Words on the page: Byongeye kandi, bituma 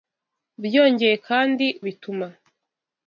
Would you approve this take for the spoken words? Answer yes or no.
yes